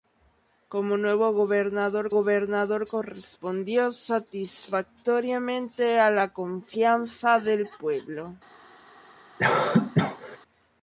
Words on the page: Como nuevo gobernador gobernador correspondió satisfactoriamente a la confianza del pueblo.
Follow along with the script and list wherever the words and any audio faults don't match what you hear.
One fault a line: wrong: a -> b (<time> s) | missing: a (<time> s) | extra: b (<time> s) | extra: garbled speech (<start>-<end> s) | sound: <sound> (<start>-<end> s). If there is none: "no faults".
sound: cough (9.4-10.4 s)